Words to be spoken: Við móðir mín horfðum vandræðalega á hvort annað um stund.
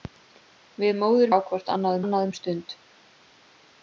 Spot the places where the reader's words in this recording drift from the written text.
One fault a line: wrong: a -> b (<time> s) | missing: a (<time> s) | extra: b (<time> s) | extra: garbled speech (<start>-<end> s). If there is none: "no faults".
missing: mín horfðum vandræðalega (1.3 s)
extra: annað (2.0 s)